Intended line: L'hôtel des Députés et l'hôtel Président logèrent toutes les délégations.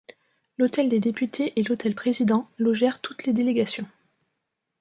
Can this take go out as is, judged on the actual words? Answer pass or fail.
pass